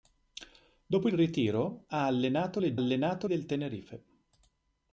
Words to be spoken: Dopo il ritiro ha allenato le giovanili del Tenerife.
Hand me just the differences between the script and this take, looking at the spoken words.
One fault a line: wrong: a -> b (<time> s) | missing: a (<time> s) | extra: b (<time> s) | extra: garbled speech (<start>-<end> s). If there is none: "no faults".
wrong: giovanili -> allenato (2.7 s)